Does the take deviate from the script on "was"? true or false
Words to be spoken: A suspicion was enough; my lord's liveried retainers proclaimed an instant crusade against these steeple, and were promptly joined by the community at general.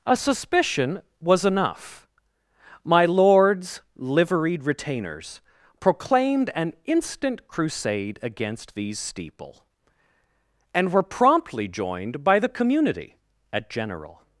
false